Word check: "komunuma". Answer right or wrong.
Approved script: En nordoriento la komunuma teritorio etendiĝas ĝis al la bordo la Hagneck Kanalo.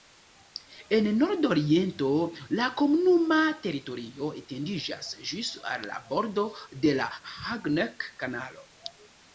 right